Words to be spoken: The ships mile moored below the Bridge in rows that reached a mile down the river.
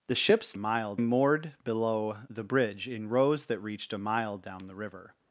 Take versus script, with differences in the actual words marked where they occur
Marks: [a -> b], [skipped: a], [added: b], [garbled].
The ships mile moored below the Bridge in rows that reached a mile down the river.